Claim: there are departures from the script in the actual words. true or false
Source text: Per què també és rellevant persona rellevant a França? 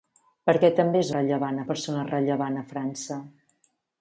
false